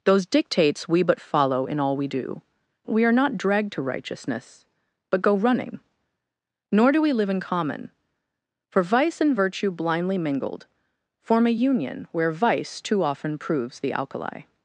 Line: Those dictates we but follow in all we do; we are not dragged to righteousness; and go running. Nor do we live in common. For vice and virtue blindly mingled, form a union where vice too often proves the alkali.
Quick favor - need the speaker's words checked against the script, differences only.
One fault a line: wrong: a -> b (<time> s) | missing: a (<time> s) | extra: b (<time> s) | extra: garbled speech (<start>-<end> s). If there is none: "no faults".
wrong: and -> but (5.1 s)